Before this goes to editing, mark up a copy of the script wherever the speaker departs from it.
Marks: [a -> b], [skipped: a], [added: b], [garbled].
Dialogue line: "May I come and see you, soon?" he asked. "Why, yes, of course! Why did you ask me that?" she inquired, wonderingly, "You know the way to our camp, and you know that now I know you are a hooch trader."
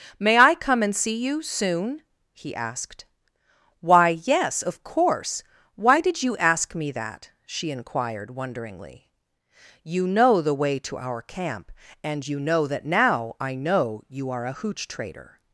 "May I come and see you, soon?" he asked. "Why, yes, of course! Why did you ask me that?" she inquired, wonderingly, "You know the way to our camp, and you know that now I know you are a hooch trader."